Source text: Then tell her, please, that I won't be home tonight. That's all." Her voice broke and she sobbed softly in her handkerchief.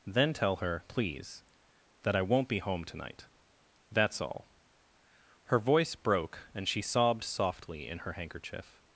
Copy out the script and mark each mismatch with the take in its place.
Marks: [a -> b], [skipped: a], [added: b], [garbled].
Then tell her, please, that I won't be home tonight. That's all." Her voice broke and she sobbed softly in her handkerchief.